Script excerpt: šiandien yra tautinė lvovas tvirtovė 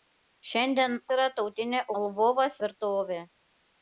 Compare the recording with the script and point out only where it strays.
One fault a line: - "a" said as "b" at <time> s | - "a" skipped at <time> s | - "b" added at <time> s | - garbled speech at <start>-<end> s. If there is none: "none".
none